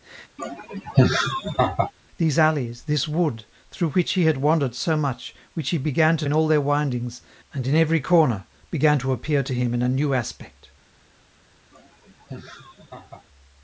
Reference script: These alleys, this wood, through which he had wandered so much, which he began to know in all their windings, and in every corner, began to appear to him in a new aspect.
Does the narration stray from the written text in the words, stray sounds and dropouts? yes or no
yes